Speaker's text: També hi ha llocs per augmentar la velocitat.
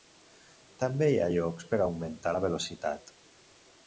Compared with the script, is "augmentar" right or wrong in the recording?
right